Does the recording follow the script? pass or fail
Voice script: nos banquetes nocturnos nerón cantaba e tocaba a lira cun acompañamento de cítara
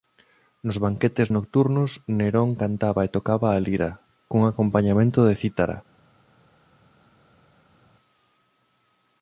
pass